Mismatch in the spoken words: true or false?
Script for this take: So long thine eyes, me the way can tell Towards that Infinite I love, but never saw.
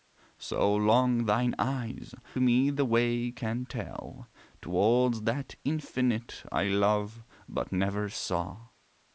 false